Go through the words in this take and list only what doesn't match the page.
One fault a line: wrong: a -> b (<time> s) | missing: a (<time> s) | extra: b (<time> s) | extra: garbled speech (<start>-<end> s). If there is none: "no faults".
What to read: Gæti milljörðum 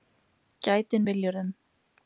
no faults